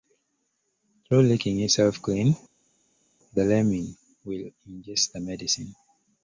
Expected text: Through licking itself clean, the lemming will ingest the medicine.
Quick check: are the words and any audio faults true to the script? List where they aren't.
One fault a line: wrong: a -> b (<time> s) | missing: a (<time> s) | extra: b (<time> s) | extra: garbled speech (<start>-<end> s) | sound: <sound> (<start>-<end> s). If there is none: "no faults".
no faults